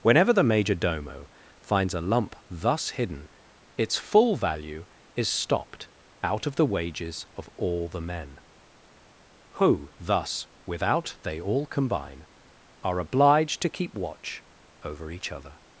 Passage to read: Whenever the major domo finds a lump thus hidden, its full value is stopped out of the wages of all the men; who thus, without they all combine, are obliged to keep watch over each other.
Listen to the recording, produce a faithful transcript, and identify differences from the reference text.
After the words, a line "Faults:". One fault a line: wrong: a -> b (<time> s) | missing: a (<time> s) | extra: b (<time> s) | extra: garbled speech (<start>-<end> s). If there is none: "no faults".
Whenever the major domo finds a lump thus hidden, its full value is stopped out of the wages of all the men; who thus, without they all combine, are obliged to keep watch over each other.
Faults:
no faults